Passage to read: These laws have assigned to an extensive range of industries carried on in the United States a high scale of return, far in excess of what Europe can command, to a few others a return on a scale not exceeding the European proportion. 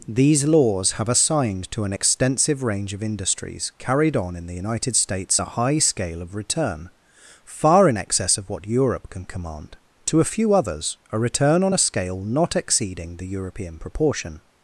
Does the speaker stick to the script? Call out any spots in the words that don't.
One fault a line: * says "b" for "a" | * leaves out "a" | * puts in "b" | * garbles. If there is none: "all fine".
all fine